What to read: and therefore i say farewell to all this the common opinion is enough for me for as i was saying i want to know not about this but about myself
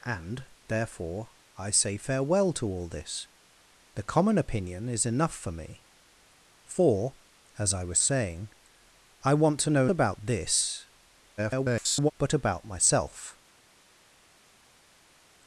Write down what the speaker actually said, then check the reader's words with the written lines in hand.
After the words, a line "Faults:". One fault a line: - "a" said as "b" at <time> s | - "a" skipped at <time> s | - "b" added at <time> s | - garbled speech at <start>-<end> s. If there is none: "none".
and therefore i say farewell to all this the common opinion is enough for me for as i was saying i want to know about this [garbled] but about myself
Faults:
- "not" skipped at 9.9 s
- garbled speech at 11.4-12.1 s